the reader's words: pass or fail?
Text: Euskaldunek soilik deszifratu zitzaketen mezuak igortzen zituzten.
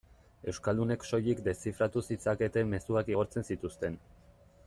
pass